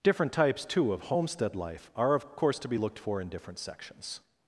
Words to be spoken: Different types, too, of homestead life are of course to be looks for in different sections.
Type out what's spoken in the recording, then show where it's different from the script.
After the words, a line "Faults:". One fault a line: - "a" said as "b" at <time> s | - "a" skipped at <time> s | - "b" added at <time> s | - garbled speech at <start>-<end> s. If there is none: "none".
Different types, too, of homestead life are of course to be looked for in different sections.
Faults:
- "looks" said as "looked" at 2.8 s